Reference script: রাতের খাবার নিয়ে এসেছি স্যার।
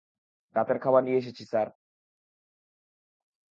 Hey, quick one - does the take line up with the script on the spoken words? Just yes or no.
yes